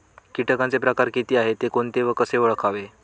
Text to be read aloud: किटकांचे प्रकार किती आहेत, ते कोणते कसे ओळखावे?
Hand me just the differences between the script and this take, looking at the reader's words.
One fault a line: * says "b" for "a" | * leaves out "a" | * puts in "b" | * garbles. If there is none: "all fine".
* puts in "व"